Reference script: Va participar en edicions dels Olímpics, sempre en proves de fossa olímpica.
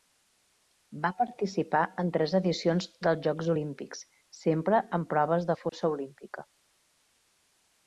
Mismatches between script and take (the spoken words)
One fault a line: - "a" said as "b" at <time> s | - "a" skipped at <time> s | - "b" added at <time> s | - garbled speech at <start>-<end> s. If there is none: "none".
- "tres" added at 2.1 s
- "Jocs" added at 3.3 s